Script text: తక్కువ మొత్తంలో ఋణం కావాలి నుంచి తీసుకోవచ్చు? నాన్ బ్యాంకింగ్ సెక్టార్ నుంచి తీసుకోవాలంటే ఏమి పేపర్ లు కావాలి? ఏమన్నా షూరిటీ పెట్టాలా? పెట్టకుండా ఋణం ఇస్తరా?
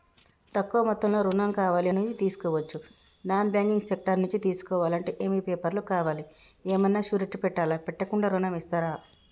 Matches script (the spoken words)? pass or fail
pass